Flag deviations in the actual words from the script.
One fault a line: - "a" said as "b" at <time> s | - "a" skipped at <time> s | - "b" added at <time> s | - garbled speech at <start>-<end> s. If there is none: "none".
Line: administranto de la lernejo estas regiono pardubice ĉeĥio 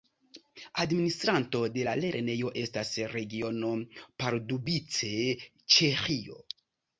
none